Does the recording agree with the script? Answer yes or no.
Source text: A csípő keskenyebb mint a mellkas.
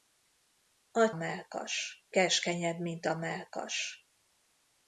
no